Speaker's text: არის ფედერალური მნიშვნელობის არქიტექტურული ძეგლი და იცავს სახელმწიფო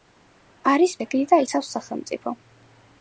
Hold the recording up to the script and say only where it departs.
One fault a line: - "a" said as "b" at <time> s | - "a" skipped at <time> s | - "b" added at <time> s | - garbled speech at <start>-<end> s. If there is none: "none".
- "ფედერალური მნიშვნელობის არქიტექტურული" skipped at 0.9 s